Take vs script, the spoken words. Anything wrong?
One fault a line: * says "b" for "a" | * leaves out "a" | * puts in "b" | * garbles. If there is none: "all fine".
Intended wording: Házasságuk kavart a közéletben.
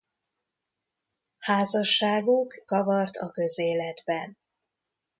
all fine